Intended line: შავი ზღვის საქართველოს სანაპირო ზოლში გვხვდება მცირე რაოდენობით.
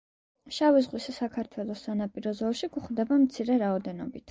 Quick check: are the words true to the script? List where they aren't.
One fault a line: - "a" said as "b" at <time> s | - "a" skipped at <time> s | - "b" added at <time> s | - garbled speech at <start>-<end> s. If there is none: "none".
none